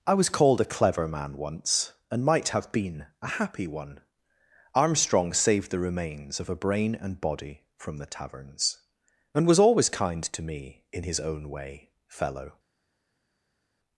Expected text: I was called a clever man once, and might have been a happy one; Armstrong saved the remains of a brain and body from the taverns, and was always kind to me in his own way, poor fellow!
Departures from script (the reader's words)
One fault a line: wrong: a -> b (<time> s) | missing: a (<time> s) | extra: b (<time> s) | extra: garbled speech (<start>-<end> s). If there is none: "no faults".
missing: poor (11.9 s)